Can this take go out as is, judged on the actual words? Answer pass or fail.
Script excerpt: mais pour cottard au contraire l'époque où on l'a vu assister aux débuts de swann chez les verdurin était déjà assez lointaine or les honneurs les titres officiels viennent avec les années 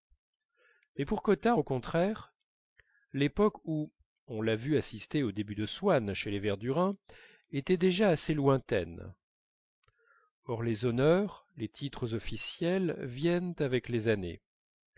pass